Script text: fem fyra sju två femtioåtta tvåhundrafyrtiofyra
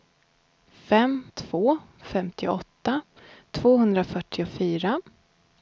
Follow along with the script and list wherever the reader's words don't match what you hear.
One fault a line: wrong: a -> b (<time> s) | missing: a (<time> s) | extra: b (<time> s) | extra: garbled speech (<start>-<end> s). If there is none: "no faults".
missing: fyra sju (1.2 s)